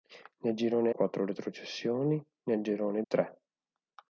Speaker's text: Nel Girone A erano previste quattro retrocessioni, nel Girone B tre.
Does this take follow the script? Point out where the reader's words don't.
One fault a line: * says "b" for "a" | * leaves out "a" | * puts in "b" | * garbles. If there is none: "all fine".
* leaves out "A erano previste"
* leaves out "B"